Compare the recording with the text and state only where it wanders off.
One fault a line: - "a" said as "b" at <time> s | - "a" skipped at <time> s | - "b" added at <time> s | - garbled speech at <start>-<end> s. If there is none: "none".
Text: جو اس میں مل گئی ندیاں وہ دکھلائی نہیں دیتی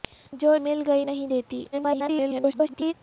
- "اس میں" skipped at 0.5 s
- "ندیاں وہ دکھلائی" skipped at 1.0 s
- garbled speech at 1.7-2.9 s